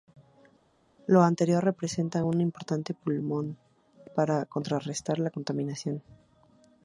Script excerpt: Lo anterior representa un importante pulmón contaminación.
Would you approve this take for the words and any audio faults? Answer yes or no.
no